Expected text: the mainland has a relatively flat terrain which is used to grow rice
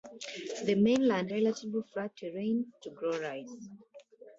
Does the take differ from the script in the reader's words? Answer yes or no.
yes